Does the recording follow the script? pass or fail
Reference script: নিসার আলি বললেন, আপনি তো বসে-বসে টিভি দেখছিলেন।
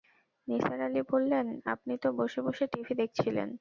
pass